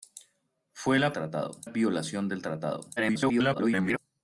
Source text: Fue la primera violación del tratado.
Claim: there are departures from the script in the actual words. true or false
true